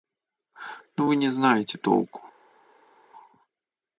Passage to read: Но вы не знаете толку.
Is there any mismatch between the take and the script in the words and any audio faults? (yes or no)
no